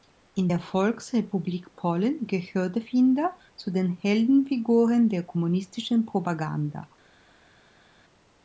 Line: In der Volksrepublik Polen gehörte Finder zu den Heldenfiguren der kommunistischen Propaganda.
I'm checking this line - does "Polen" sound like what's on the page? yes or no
yes